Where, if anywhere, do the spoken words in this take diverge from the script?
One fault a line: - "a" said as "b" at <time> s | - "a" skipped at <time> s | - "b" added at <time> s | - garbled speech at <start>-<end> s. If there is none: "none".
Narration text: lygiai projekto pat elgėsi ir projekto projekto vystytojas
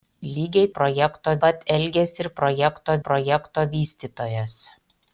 none